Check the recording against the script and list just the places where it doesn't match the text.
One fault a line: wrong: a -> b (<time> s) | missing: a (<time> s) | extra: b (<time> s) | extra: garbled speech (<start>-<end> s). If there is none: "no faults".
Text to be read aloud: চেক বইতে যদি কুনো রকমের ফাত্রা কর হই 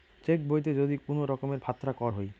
no faults